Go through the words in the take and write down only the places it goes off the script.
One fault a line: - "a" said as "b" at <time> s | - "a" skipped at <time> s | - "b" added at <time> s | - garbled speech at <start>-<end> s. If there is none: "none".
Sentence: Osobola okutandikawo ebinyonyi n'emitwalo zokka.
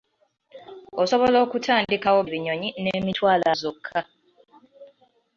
none